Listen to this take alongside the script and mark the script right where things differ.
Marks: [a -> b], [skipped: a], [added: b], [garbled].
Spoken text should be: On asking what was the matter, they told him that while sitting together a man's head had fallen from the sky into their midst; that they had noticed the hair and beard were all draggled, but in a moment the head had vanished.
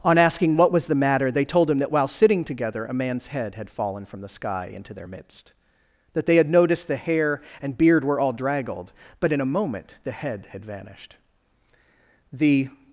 On asking what was the matter, they told him that while sitting together a man's head had fallen from the sky into their midst; that they had noticed the hair and beard were all draggled, but in a moment the head had vanished. [added: The]